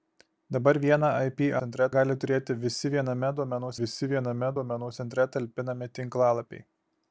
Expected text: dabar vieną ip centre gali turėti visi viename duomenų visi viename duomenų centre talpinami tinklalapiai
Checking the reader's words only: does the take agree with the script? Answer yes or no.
yes